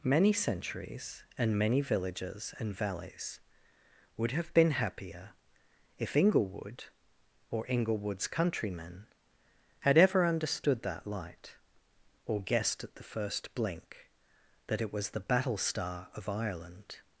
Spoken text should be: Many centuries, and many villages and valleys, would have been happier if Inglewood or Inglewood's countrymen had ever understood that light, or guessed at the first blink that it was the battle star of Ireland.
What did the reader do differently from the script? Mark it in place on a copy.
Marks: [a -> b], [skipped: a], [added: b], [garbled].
Many centuries, and many villages and valleys, would have been happier if Inglewood or Inglewood's countrymen had ever understood that light, or guessed at the first blink that it was the battle star of Ireland.